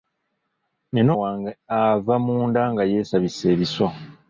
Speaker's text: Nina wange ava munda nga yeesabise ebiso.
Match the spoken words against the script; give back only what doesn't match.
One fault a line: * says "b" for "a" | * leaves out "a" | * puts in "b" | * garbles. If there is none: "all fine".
all fine